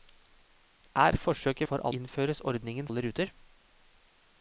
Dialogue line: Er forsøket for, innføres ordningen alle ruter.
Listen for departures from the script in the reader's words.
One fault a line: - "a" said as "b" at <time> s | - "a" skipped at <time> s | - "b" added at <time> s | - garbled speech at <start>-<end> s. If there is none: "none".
none